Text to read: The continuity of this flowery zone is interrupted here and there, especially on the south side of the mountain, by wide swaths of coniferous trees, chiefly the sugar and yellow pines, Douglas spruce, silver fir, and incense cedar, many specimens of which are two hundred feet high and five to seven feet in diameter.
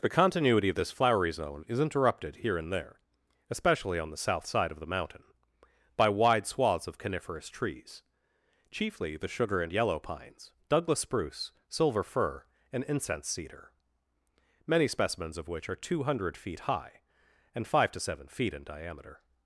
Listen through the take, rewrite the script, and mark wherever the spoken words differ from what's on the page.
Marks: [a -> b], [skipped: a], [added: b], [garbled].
The continuity of this flowery zone is interrupted here and there, especially on the south side of the mountain, by wide swaths of coniferous trees, chiefly the sugar and yellow pines, Douglas spruce, silver fir, and incense cedar, many specimens of which are two hundred feet high and five to seven feet in diameter.